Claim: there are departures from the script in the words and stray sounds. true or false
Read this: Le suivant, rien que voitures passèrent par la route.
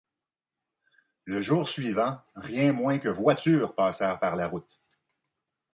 true